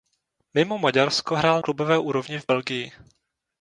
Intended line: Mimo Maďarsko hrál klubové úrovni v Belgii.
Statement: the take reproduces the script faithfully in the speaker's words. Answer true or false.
true